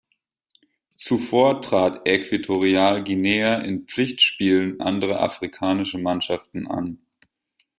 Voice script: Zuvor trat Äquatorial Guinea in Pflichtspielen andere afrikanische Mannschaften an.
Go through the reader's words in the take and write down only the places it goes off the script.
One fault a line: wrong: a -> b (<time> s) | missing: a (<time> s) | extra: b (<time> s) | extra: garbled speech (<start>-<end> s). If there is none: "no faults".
no faults